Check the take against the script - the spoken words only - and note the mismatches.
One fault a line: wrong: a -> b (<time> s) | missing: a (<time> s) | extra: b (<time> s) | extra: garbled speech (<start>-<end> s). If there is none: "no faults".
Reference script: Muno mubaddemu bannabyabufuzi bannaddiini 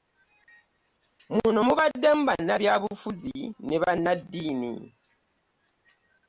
extra: ne (3.7 s)